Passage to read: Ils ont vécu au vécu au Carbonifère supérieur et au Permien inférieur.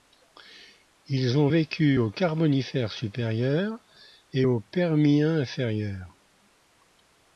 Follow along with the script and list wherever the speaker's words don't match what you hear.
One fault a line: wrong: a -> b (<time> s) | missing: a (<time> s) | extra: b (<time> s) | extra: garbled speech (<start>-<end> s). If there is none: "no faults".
missing: vécu au (2.1 s)